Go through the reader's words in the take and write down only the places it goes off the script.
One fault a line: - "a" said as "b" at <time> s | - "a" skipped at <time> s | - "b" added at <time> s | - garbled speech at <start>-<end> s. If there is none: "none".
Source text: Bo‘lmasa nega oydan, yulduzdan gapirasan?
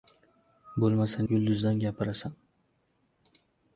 - "nega oydan" skipped at 1.2 s